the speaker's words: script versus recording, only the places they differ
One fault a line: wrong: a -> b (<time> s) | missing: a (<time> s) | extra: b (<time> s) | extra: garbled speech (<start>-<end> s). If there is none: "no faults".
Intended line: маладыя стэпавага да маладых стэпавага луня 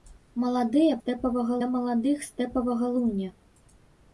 no faults